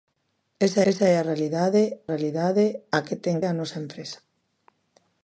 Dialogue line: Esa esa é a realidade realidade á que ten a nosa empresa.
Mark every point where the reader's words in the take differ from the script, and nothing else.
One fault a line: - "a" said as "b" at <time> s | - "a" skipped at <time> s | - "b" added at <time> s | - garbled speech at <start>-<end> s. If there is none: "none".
none